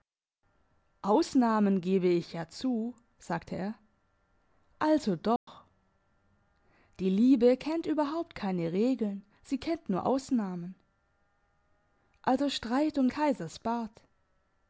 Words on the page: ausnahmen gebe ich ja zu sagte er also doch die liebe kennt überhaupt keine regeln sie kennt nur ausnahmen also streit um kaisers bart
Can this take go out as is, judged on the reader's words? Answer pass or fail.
pass